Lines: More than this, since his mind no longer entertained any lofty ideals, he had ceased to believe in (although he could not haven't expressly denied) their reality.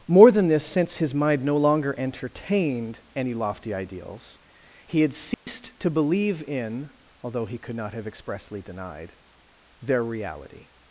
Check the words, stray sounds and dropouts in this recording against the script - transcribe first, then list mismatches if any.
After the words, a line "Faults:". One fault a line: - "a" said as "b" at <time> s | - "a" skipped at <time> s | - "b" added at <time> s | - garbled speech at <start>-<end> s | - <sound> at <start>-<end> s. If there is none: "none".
More than this, since his mind no longer entertained any lofty ideals, he had ceased to believe in (although he could not have expressly denied) their reality.
Faults:
- dropout at 5.3-5.5 s
- "haven't" said as "have" at 7.9 s